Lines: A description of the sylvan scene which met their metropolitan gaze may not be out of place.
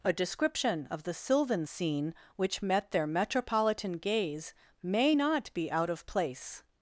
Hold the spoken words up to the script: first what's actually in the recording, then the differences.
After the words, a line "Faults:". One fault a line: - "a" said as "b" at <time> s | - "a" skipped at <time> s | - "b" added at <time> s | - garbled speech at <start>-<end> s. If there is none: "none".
A description of the sylvan scene which met their metropolitan gaze may not be out of place.
Faults:
none